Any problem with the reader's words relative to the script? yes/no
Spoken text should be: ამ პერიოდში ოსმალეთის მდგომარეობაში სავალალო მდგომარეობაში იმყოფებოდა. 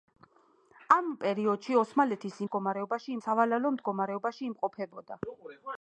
no